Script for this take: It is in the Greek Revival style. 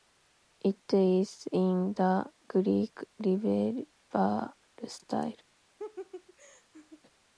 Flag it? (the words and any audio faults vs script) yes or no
yes